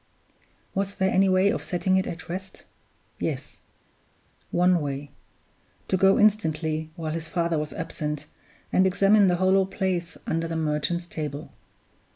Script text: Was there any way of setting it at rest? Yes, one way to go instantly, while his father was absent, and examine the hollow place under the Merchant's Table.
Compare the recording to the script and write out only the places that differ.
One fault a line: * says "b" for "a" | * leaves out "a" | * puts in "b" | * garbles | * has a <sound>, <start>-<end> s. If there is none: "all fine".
all fine